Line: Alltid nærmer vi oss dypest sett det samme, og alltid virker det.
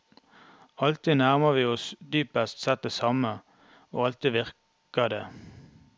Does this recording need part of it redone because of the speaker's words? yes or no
no